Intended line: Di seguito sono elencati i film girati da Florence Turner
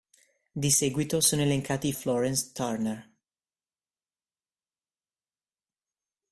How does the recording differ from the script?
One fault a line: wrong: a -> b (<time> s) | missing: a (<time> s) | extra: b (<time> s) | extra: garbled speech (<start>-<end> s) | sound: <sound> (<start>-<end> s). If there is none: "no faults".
missing: film girati da (1.9 s)